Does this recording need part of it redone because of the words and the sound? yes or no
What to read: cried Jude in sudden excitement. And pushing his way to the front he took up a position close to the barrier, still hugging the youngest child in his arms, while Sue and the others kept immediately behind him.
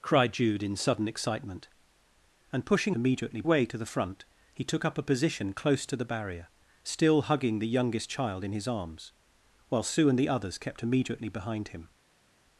yes